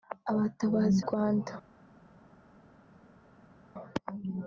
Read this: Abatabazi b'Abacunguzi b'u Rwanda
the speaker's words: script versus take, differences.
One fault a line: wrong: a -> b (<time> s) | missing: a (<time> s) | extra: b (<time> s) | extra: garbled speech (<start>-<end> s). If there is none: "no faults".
missing: b'Abacunguzi b'u (1.0 s)